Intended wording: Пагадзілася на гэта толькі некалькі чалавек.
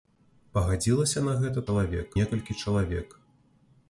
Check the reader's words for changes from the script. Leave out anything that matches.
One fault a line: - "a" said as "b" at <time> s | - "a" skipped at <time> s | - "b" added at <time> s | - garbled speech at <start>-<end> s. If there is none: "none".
- "толькі" said as "чалавек" at 1.7 s